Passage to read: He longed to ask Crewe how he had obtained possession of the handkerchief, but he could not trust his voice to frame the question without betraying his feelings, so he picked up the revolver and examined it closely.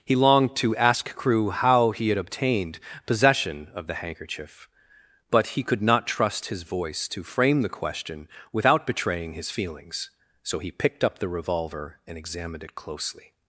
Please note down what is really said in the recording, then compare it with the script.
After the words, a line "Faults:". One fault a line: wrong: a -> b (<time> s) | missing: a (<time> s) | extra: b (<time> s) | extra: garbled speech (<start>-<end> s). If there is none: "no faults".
He longed to ask Crewe how he had obtained possession of the handkerchief, but he could not trust his voice to frame the question without betraying his feelings, so he picked up the revolver and examined it closely.
Faults:
no faults